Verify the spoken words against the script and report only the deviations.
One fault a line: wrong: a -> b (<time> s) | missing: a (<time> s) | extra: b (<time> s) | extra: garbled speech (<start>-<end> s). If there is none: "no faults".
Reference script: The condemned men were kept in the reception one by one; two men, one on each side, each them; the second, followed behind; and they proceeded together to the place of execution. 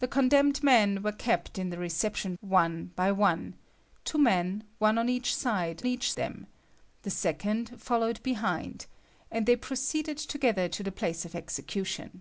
no faults